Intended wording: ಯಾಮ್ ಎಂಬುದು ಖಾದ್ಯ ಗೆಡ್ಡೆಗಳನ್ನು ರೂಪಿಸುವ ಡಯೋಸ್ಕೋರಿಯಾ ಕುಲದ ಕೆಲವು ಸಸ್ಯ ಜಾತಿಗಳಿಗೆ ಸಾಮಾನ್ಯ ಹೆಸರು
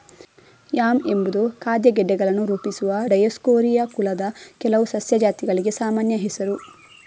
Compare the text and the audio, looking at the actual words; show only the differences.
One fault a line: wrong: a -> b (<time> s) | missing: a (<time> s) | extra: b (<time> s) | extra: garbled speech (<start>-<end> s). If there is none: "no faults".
no faults